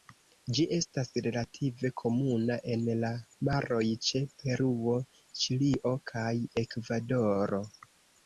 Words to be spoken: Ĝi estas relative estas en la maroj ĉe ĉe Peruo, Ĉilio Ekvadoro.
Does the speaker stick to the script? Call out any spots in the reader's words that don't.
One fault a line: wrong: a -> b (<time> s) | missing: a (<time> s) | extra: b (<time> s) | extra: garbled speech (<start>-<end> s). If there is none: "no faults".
wrong: estas -> komuna (2.0 s)
missing: ĉe (4.2 s)
extra: kaj (6.1 s)